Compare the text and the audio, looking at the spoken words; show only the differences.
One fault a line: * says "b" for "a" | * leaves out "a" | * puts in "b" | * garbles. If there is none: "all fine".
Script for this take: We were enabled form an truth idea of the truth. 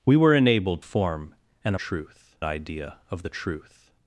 all fine